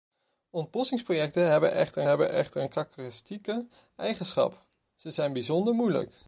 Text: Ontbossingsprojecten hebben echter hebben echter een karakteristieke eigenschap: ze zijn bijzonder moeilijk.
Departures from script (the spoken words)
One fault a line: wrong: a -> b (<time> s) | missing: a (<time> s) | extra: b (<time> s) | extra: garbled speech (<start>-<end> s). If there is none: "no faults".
no faults